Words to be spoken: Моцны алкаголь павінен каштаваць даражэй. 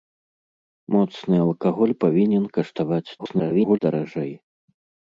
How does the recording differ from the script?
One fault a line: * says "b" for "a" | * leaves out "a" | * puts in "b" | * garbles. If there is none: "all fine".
* garbles